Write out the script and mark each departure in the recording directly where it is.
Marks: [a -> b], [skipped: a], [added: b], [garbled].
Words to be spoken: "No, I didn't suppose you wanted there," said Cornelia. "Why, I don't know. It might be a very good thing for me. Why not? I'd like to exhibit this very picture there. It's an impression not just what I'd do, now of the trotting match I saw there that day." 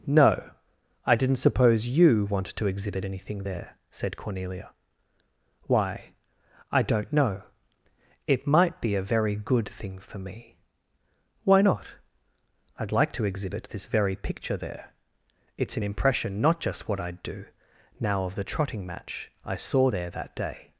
"No, I didn't suppose you wanted [added: to exhibit anything] there," said Cornelia. "Why, I don't know. It might be a very good thing for me. Why not? I'd like to exhibit this very picture there. It's an impression not just what I'd do, now of the trotting match I saw there that day."